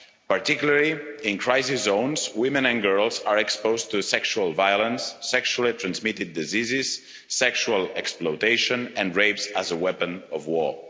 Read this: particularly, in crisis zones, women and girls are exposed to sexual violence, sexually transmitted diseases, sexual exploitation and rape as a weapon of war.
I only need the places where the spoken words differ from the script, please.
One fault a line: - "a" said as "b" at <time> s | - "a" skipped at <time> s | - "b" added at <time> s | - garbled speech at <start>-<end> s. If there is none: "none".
none